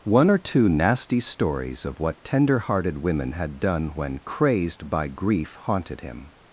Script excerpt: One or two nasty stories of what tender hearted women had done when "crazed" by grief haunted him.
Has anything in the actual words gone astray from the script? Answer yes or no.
no